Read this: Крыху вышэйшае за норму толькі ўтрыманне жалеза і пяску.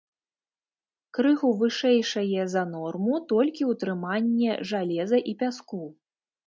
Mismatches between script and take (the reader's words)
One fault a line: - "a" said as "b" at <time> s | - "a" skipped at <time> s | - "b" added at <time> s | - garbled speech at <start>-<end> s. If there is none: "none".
none